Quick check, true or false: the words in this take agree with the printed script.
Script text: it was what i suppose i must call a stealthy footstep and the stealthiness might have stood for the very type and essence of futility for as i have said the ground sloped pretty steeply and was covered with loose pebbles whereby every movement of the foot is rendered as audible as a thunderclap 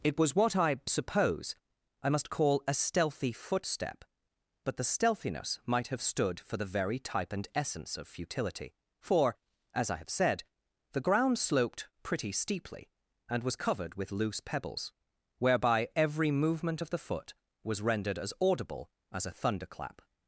false